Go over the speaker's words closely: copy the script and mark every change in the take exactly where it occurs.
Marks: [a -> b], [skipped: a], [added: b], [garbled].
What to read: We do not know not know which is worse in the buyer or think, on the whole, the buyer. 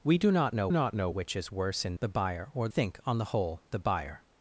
We do not know not know which is worse in the buyer or think, on the whole, the buyer.